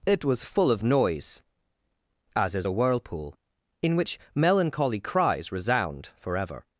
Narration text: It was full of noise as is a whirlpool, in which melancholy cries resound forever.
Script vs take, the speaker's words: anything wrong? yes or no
no